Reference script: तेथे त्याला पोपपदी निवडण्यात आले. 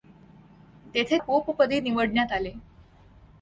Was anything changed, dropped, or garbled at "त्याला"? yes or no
yes